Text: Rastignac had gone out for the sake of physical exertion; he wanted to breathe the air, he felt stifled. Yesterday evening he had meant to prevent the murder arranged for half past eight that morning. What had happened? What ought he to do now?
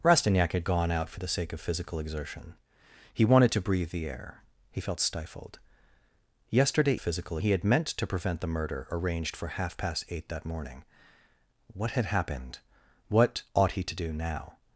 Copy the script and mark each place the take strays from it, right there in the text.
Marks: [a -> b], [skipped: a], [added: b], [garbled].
Rastignac had gone out for the sake of physical exertion; he wanted to breathe the air, he felt stifled. Yesterday [evening -> physical] he had meant to prevent the murder arranged for half past eight that morning. What had happened? What ought he to do now?